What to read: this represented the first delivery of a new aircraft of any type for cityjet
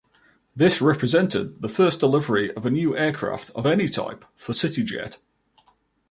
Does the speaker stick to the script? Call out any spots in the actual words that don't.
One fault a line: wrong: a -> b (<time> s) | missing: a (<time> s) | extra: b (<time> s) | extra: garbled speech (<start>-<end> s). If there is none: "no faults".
no faults